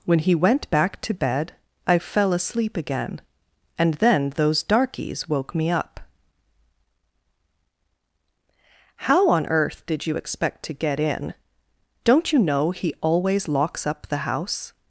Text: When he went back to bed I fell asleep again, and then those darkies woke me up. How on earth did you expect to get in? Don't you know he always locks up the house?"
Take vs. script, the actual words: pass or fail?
pass